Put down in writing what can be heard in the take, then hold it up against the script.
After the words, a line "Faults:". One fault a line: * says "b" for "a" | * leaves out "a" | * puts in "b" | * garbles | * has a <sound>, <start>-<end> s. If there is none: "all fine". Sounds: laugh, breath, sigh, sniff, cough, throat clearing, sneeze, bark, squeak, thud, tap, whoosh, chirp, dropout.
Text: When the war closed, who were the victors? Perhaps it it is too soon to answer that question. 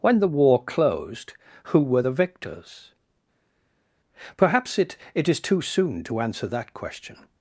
When the war closed, who were the victors? Perhaps it it is too soon to answer that question.
Faults:
all fine